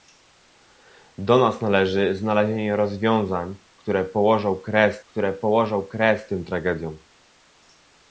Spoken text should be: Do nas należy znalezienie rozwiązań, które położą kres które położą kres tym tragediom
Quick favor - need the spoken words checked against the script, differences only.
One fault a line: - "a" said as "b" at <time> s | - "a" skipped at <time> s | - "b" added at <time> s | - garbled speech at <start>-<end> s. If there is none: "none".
none